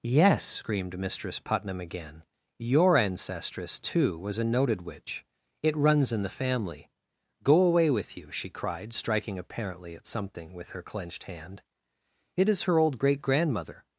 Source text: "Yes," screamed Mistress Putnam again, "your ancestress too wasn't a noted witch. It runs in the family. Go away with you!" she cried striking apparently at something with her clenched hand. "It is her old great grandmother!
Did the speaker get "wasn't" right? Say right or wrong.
wrong